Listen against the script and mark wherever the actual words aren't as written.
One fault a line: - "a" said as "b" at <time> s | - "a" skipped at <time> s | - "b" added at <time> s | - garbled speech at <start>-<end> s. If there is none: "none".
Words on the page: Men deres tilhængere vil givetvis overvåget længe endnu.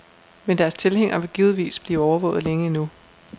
- "blive" added at 1.8 s